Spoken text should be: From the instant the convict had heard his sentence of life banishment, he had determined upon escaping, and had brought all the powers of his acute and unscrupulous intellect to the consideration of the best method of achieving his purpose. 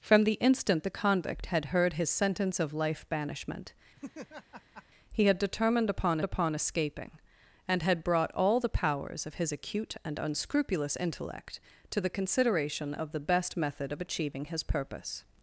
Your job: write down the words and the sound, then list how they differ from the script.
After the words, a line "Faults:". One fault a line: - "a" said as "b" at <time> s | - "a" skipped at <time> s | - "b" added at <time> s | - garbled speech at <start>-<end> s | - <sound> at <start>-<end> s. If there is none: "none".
From the instant the convict had heard his sentence of life banishment, he had determined upon upon escaping, and had brought all the powers of his acute and unscrupulous intellect to the consideration of the best method of achieving his purpose.
Faults:
- laugh at 4.0-4.8 s
- "upon" added at 6.2 s